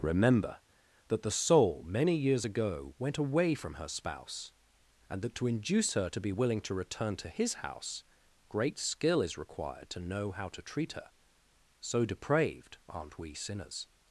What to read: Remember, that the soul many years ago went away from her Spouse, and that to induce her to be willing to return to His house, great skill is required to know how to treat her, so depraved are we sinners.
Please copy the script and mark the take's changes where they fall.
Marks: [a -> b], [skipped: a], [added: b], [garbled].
Remember, that the soul many years ago went away from her Spouse, and that to induce her to be willing to return to His house, great skill is required to know how to treat her, so depraved [are -> aren't] we sinners.